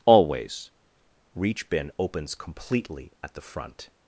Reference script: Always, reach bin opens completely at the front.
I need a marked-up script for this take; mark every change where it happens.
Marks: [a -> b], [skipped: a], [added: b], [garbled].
Always, reach bin opens completely at the front.